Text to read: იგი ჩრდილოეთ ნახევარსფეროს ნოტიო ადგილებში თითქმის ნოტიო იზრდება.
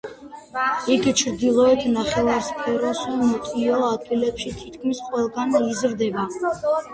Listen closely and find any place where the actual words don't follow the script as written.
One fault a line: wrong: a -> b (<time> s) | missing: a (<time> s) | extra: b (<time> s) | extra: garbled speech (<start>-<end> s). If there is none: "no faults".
wrong: ნოტიო -> ყველგან (5.1 s)